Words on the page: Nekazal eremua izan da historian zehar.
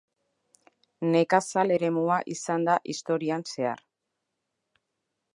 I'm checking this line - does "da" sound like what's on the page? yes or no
yes